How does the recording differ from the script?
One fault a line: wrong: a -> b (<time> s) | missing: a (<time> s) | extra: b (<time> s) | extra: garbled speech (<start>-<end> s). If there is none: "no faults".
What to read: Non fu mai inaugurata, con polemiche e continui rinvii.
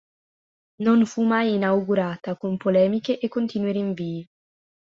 no faults